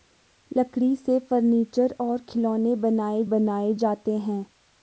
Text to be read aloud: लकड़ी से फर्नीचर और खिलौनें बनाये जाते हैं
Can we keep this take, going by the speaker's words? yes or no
no